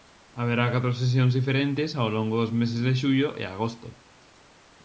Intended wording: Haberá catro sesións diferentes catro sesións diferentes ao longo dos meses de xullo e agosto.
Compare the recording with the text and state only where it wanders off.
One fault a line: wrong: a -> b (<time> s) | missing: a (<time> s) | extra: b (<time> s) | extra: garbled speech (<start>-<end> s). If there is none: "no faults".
missing: catro sesións diferentes (1.9 s)